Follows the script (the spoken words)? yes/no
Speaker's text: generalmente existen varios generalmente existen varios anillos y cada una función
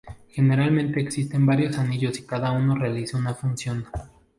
no